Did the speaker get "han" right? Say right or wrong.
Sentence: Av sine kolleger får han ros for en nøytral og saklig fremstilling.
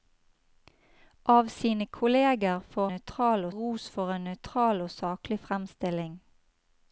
wrong